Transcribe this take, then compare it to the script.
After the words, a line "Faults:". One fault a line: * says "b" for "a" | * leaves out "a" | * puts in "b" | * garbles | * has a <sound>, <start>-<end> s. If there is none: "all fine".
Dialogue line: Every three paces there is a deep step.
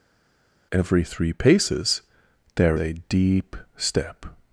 Every three paces there a deep step.
Faults:
* leaves out "is"